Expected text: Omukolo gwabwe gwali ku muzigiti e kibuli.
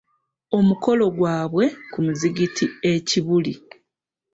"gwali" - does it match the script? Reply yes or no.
no